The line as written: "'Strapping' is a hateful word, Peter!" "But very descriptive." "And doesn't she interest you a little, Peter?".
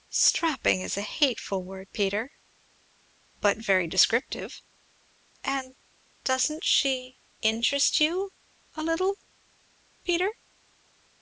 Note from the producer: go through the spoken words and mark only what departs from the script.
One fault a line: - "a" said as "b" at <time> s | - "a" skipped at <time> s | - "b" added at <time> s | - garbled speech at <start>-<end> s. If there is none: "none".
none